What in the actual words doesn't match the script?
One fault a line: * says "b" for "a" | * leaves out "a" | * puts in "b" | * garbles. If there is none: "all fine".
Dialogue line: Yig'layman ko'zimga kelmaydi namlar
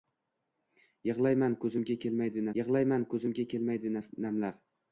* puts in "yig'layman ko'zimga kelmaydi"